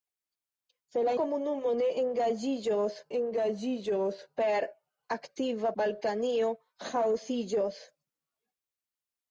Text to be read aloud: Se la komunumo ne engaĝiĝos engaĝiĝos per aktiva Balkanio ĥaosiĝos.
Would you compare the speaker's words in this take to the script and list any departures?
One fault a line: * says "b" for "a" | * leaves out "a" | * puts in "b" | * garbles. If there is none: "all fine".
all fine